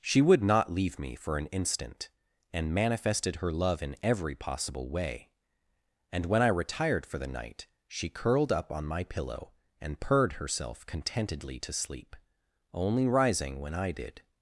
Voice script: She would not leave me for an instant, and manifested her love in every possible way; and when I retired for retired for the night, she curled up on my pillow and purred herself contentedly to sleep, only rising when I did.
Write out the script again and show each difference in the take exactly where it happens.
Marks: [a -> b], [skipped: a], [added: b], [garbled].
She would not leave me for an instant, and manifested her love in every possible way; and when I retired for [skipped: retired for] the night, she curled up on my pillow and purred herself contentedly to sleep, only rising when I did.